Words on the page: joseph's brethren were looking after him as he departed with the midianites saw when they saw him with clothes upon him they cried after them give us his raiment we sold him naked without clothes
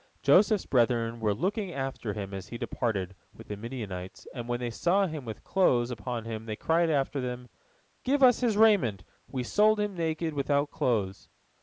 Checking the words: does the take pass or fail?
fail